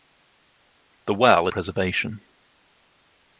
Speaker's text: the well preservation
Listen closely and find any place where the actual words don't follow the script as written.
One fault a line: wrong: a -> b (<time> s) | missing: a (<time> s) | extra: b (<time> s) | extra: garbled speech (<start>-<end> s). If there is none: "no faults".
no faults